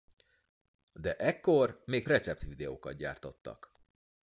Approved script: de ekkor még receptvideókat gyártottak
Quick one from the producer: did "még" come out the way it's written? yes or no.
yes